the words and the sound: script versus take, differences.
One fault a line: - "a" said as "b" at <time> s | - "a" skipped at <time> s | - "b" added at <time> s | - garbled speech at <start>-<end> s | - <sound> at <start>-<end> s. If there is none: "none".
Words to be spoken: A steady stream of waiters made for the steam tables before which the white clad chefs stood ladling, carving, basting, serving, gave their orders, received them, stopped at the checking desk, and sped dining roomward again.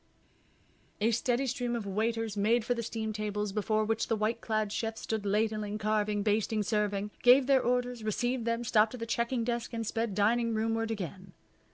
none